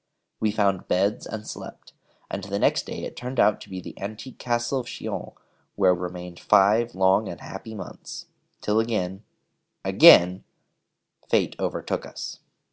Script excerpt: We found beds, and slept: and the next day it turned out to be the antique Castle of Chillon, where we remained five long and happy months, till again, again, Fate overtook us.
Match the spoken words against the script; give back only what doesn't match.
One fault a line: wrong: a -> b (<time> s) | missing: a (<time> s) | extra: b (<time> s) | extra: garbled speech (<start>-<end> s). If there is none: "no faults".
missing: we (5.9 s)